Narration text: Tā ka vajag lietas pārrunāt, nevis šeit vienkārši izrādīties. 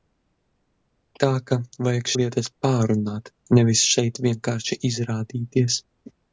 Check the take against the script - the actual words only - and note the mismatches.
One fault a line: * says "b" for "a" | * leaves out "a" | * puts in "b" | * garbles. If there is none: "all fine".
all fine